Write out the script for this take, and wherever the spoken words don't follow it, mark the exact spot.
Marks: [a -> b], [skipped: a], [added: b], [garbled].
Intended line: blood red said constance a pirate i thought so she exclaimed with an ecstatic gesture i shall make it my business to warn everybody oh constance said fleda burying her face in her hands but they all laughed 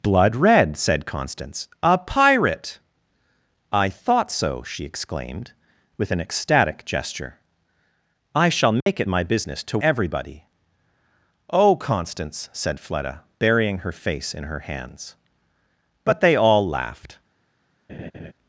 blood red said constance a pirate i thought so she exclaimed with an ecstatic gesture i shall make it my business to [skipped: warn] everybody oh constance said fleda burying her face in her hands but they all laughed